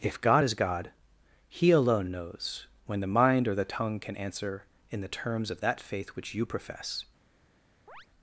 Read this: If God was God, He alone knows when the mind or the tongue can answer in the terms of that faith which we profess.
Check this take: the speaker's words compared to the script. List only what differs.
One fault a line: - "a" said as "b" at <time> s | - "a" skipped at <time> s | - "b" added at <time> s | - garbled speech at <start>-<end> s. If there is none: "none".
- "was" said as "is" at 0.4 s
- "we" said as "you" at 6.3 s